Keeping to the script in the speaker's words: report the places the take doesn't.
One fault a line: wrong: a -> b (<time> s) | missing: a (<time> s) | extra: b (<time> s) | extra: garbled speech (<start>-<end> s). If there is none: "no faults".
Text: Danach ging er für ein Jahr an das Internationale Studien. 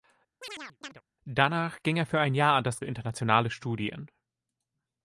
no faults